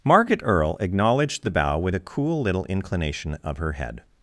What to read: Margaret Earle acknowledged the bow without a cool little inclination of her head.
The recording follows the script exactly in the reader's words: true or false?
false